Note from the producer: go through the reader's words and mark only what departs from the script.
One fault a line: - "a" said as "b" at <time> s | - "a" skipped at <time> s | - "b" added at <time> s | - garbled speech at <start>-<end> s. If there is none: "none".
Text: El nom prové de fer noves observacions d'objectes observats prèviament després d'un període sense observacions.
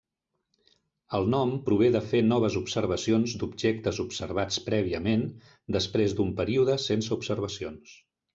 none